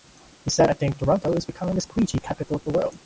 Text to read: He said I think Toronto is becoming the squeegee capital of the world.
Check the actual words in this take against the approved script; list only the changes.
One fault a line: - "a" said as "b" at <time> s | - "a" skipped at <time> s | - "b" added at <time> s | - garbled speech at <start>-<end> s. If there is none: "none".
none